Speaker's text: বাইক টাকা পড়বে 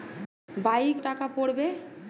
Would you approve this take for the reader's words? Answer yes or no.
yes